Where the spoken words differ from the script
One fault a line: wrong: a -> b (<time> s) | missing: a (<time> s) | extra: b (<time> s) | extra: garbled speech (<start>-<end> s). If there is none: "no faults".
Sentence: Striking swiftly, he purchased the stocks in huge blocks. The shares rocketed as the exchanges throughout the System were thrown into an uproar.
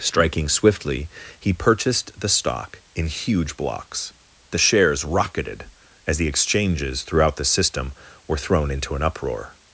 wrong: stocks -> stock (2.3 s)